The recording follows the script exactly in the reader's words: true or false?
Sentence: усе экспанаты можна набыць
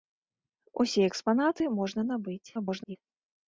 false